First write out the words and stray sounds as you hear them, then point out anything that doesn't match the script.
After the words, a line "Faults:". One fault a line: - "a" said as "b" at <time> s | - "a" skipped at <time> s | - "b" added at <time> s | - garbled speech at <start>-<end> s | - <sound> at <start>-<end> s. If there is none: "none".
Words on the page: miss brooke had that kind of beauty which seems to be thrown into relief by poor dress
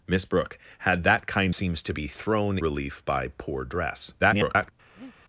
miss brooke had that kind seems to be thrown relief by poor dress [garbled]
Faults:
- "of beauty which" skipped at 1.6 s
- "into" skipped at 2.6 s
- garbled speech at 4.2-4.7 s
- breath at 5.0-5.2 s